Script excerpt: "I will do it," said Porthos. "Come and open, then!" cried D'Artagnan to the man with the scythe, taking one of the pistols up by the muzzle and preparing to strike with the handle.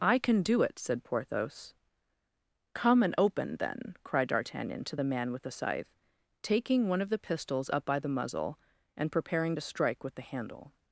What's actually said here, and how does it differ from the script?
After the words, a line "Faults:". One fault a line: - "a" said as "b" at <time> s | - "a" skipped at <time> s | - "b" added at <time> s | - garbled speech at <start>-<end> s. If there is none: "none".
"I can do it," said Porthos. "Come and open, then!" cried D'Artagnan to the man with the scythe, taking one of the pistols up by the muzzle and preparing to strike with the handle.
Faults:
- "will" said as "can" at 0.2 s